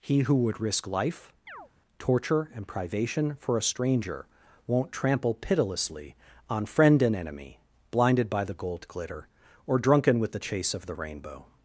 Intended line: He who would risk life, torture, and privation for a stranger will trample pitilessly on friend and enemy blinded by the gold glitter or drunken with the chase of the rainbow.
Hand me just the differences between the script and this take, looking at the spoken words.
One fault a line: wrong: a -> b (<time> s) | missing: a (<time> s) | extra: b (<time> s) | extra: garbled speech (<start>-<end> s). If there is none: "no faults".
wrong: will -> won't (4.7 s)